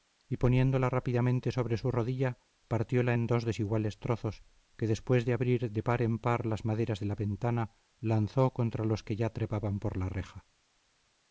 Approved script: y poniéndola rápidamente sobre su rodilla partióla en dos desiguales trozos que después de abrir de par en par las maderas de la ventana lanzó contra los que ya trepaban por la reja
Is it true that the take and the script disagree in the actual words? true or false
false